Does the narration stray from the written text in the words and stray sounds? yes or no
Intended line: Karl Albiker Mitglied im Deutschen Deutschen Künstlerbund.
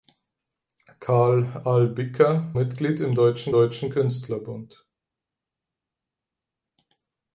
no